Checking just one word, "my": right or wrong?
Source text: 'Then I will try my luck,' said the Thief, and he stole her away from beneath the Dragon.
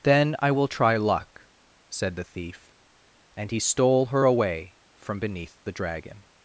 wrong